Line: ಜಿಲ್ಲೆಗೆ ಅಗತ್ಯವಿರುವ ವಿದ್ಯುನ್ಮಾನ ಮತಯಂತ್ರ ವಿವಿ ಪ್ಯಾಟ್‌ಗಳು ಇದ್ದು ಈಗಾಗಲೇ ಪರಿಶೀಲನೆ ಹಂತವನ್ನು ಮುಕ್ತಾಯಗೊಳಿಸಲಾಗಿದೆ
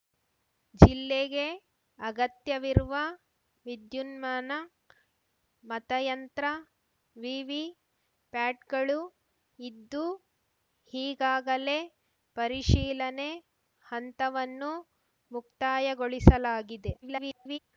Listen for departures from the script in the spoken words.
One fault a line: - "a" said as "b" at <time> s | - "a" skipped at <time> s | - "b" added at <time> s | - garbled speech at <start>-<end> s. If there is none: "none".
- garbled speech at 17.0-17.6 s